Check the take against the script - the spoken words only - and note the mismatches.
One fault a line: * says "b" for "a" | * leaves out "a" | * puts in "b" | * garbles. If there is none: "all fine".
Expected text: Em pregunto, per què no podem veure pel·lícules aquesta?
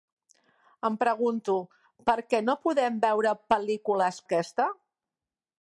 all fine